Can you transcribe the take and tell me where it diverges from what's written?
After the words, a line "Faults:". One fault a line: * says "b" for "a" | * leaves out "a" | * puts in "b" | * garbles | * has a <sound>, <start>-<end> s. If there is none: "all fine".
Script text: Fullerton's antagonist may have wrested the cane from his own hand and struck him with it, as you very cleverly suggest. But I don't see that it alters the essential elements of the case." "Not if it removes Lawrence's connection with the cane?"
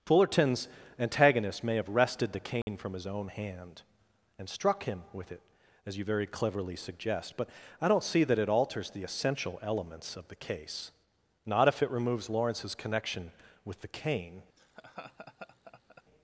Fullerton's antagonist may have wrested the cane from his own hand and struck him with it, as you very cleverly suggest. But I don't see that it alters the essential elements of the case." "Not if it removes Lawrence's connection with the cane?"
Faults:
* has a dropout, 2.6-2.7 s
* has a laugh, 14.6-16.0 s